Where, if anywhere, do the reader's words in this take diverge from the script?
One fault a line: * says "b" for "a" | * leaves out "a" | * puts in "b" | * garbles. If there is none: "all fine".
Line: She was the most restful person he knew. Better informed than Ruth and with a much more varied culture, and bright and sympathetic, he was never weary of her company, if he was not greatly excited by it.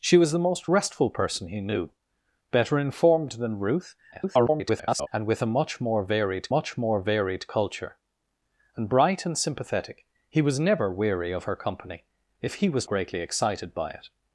* garbles
* puts in "much more varied"
* leaves out "not"